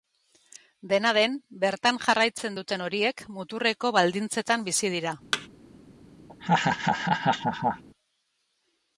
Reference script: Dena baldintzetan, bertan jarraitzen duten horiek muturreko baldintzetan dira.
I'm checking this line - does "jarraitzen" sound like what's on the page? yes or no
yes